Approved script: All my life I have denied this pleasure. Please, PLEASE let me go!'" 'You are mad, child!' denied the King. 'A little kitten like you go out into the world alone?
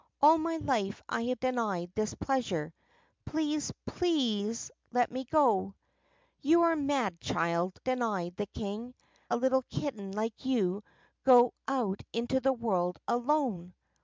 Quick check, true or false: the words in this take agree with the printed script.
true